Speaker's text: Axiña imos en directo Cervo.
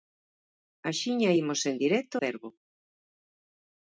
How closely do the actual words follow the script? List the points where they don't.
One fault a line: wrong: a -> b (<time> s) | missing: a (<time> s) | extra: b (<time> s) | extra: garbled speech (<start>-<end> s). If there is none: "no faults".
no faults